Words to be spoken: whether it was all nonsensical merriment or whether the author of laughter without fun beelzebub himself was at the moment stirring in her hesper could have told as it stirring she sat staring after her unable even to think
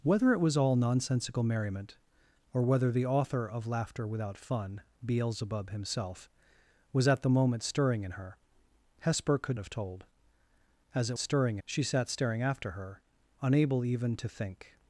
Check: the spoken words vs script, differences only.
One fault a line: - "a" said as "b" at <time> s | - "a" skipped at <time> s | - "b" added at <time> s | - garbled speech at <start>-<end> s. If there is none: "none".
none